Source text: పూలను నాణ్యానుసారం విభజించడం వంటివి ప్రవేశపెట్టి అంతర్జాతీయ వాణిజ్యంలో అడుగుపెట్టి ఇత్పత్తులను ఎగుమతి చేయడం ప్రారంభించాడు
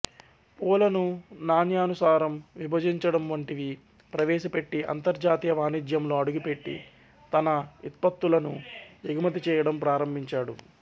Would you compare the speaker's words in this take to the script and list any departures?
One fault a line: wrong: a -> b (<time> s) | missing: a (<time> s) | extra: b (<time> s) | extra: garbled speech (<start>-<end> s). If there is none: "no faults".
extra: తన (7.3 s)